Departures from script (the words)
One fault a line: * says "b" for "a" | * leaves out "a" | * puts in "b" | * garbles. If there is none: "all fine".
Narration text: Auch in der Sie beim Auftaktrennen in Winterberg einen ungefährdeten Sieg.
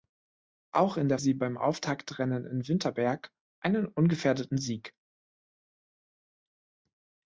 all fine